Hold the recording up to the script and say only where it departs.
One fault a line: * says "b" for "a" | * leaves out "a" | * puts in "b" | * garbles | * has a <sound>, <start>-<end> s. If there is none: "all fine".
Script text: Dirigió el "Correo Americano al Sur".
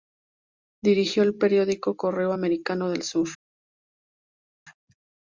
* puts in "periódico"
* says "del" for "al"